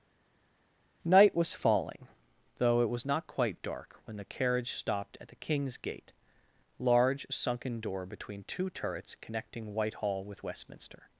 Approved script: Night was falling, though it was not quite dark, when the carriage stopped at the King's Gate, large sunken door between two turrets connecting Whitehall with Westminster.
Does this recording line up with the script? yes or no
yes